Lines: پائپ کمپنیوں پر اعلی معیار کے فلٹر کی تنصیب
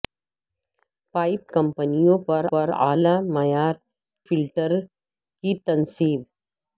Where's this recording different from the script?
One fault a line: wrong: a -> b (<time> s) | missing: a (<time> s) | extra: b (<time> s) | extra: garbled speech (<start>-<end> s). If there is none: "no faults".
extra: پر (2.5 s)
missing: کے (3.7 s)